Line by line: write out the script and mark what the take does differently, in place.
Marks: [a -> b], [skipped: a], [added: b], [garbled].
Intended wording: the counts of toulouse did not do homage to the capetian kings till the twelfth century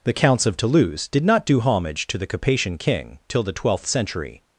the counts of toulouse did not do homage to the capetian [kings -> king] till the twelfth century